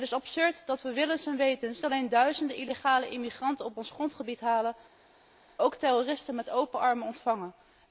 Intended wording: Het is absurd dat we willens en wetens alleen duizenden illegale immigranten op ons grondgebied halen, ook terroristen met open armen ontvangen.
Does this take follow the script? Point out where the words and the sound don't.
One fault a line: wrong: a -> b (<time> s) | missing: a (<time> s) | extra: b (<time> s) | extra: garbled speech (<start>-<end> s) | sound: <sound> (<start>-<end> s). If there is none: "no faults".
no faults